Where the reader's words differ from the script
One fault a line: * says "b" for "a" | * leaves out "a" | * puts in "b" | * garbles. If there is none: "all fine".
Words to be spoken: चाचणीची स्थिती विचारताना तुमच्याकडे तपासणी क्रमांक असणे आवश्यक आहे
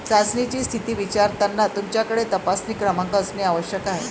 all fine